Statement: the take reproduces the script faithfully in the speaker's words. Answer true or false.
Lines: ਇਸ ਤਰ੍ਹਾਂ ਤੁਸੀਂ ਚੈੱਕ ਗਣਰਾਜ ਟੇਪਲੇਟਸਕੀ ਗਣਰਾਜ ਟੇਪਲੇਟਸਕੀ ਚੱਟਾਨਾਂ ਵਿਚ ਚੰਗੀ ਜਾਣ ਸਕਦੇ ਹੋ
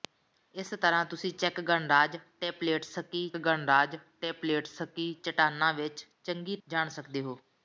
true